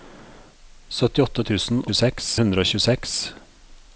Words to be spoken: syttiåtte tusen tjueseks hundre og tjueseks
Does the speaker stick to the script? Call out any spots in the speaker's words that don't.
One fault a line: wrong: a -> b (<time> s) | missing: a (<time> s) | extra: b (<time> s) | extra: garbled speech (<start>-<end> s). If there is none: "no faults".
no faults